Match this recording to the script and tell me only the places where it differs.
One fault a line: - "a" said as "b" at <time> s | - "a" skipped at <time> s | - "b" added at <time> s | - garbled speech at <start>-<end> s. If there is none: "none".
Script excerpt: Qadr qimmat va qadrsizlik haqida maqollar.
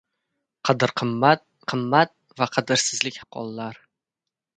- "qimmat" added at 1.7 s
- "haqida" skipped at 3.2 s